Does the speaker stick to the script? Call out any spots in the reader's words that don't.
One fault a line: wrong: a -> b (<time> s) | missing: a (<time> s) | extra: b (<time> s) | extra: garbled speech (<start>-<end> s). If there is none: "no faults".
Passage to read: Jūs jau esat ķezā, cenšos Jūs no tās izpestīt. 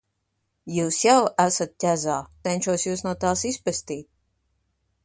no faults